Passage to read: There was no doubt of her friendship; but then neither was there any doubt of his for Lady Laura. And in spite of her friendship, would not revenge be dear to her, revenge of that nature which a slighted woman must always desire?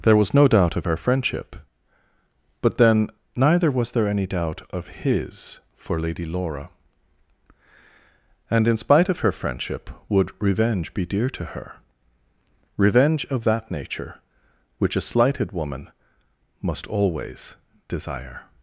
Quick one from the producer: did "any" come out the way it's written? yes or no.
yes